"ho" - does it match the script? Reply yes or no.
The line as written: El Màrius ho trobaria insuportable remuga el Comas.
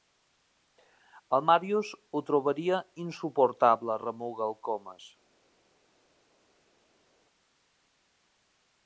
yes